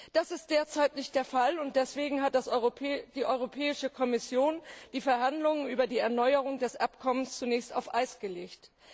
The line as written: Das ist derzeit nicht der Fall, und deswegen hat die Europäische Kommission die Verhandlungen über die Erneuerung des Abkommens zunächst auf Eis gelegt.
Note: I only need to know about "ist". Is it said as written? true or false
true